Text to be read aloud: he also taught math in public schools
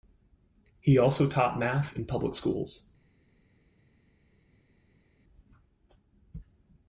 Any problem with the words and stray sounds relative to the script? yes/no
no